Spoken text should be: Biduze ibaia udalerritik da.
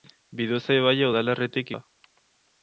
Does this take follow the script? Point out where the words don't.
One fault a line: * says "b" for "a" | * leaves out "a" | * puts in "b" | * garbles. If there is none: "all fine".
all fine